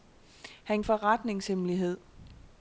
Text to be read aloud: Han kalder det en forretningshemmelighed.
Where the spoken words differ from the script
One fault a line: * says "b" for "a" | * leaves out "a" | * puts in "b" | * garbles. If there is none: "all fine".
* leaves out "kalder det en"